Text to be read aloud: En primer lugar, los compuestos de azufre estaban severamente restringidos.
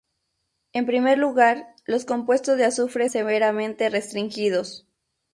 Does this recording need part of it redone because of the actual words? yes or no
yes